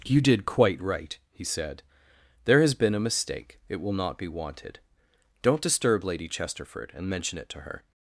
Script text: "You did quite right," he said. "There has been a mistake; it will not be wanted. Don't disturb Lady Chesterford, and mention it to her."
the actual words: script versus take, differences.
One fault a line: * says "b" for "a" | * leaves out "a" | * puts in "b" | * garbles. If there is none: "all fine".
all fine